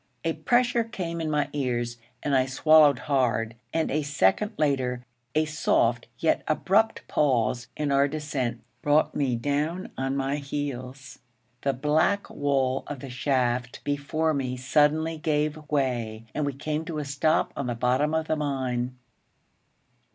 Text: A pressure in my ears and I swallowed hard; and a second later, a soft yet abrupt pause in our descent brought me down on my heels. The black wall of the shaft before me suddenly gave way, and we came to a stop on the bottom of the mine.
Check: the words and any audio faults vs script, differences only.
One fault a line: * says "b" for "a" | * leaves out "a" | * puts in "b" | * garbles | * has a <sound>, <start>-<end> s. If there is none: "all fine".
* puts in "came"